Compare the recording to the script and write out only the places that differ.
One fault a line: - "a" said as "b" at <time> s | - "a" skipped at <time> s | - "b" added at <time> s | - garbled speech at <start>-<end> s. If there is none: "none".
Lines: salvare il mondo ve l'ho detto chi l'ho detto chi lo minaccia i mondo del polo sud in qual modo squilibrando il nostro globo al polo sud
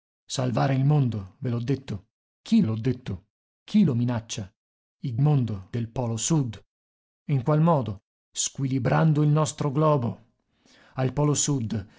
none